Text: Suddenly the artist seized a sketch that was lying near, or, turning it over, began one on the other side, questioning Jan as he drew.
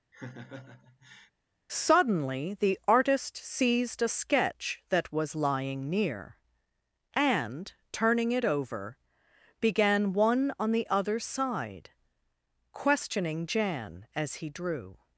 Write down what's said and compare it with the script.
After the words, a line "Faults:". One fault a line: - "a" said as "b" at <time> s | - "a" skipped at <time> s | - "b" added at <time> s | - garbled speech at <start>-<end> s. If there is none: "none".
Suddenly the artist seized a sketch that was lying near, and, turning it over, began one on the other side, questioning Jan as he drew.
Faults:
- "or" said as "and" at 7.1 s